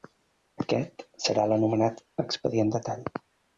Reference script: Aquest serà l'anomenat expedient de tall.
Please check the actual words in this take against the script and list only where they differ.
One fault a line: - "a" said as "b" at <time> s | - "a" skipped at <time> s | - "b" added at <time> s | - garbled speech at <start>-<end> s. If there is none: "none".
none